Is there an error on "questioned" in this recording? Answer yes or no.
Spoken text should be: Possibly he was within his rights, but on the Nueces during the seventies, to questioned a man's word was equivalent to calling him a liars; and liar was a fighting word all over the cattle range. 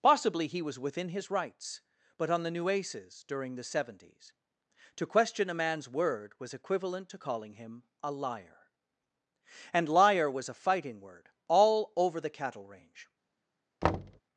yes